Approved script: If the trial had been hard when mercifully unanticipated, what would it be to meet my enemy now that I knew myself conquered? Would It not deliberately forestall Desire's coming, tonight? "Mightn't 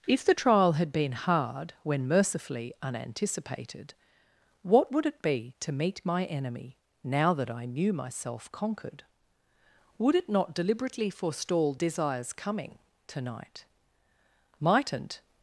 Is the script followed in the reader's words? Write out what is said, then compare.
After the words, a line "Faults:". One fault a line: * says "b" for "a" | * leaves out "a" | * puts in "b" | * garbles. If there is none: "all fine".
If the trial had been hard when mercifully unanticipated, what would it be to meet my enemy now that I knew myself conquered? Would It not deliberately forestall Desire's coming, tonight? "Mightn't
Faults:
all fine